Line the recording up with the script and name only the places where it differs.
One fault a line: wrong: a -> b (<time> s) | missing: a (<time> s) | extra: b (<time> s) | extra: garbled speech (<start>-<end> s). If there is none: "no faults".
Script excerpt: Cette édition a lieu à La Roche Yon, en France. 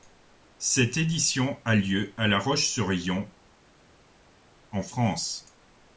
extra: sur (2.6 s)